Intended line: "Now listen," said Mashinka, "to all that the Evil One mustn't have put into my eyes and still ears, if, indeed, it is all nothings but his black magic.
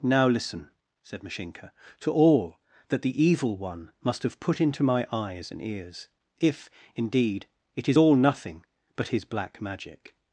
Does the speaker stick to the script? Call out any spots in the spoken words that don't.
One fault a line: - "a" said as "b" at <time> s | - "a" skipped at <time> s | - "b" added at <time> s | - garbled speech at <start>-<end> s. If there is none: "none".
- "mustn't" said as "must" at 4.0 s
- "still" skipped at 5.6 s
- "nothings" said as "nothing" at 8.1 s